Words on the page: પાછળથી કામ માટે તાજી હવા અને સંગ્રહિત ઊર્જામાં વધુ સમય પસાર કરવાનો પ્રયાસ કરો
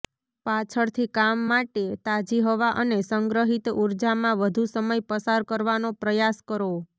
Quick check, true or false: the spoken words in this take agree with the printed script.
true